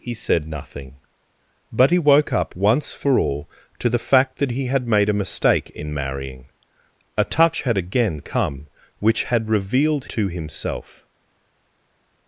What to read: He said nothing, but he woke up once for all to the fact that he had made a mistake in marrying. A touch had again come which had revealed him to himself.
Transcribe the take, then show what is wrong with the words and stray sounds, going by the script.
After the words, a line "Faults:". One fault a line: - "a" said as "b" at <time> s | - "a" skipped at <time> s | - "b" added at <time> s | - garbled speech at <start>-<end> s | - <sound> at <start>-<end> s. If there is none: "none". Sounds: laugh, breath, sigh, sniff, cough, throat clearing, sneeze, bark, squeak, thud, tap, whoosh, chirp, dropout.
He said nothing, but he woke up once for all to the fact that he had made a mistake in marrying. A touch had again come which had revealed to himself.
Faults:
- "him" skipped at 10.1 s